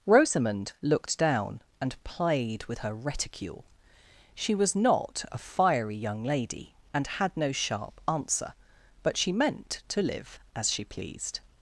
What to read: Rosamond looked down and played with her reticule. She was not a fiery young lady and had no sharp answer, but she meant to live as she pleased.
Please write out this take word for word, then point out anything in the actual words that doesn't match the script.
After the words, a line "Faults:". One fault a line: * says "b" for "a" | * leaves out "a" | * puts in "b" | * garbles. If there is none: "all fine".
Rosamond looked down and played with her reticule. She was not a fiery young lady and had no sharp answer, but she meant to live as she pleased.
Faults:
all fine